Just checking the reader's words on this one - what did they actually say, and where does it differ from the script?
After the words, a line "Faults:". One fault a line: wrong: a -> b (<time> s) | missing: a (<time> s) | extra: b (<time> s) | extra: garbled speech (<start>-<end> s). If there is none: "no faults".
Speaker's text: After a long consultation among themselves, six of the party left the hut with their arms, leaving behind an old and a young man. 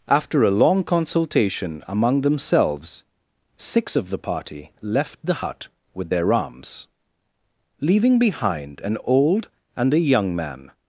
After a long consultation among themselves, six of the party left the hut with their arms, leaving behind an old and a young man.
Faults:
no faults